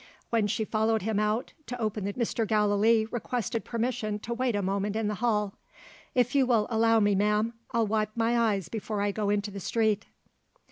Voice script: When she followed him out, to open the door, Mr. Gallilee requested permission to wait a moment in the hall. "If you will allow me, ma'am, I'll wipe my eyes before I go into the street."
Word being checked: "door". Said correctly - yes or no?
no